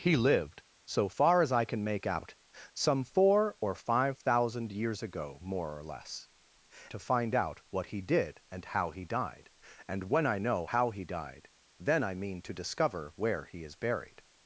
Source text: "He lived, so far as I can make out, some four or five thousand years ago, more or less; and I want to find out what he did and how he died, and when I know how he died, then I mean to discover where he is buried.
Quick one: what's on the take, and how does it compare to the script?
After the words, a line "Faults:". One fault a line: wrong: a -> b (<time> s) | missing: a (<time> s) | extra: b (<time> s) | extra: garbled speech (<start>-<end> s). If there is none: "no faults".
"He lived, so far as I can make out, some four or five thousand years ago, more or less; to find out what he did and how he died, and when I know how he died, then I mean to discover where he is buried.
Faults:
missing: and I want (6.3 s)